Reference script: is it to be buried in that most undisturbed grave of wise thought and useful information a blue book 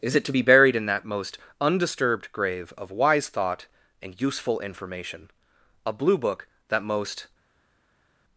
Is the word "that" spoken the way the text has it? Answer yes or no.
yes